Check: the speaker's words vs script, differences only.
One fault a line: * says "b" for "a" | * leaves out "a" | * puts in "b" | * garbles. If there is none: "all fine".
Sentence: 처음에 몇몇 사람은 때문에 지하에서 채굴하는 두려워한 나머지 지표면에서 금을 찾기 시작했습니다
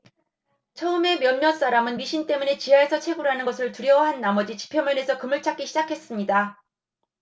* puts in "미신"
* puts in "것을"